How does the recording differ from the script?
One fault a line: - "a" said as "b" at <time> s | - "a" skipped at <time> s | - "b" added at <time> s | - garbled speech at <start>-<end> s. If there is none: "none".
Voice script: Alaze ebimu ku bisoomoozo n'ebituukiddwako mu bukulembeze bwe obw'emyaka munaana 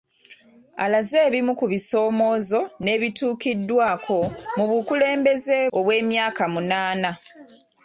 - "bwe" skipped at 5.6 s